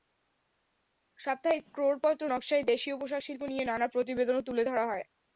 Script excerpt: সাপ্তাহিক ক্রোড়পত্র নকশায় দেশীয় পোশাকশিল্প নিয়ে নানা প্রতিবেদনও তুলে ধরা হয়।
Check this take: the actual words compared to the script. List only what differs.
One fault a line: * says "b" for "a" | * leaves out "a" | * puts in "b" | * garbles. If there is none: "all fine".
all fine